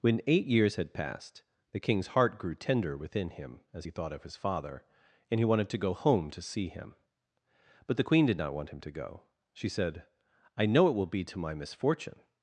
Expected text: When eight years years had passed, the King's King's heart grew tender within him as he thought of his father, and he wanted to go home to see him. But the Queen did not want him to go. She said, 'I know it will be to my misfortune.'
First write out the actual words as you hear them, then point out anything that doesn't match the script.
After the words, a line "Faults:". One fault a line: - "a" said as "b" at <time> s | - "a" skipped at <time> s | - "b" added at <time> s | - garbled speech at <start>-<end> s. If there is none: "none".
When eight years had passed, the King's heart grew tender within him as he thought of his father, and he wanted to go home to see him. But the Queen did not want him to go. She said, 'I know it will be to my misfortune.'
Faults:
- "years" skipped at 0.8 s
- "King's" skipped at 2.1 s